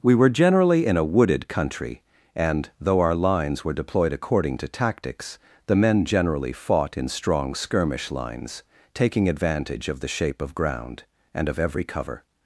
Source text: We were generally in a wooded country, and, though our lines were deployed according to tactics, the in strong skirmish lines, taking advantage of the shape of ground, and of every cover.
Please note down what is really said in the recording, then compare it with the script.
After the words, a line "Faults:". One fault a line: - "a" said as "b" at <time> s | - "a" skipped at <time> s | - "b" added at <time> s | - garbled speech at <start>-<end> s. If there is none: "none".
We were generally in a wooded country, and, though our lines were deployed according to tactics, the men generally fought in strong skirmish lines, taking advantage of the shape of ground, and of every cover.
Faults:
- "men generally fought" added at 5.8 s